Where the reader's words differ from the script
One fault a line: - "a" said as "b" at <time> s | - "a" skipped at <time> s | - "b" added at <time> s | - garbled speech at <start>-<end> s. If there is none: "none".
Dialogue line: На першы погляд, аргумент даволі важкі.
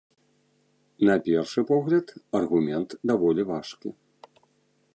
none